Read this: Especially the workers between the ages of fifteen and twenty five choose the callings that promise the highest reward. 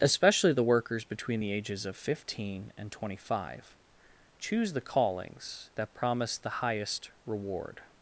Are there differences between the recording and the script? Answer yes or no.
no